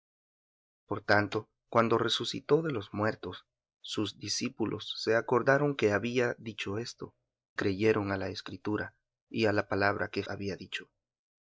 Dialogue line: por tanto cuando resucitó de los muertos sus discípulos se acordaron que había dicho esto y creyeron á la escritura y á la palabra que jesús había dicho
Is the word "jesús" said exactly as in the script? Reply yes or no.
no